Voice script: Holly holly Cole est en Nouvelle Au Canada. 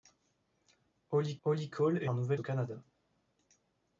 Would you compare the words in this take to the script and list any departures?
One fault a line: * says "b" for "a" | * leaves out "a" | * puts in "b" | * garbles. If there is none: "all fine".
all fine